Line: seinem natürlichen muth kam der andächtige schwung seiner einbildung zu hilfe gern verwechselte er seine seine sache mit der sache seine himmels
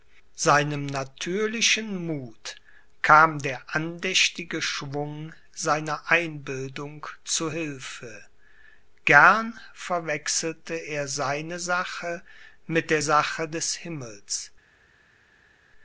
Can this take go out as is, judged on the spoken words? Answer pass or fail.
fail